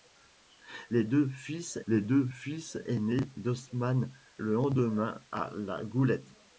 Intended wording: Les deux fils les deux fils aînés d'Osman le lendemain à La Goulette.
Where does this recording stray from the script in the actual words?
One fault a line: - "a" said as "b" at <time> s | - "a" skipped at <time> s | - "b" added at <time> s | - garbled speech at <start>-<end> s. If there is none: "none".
none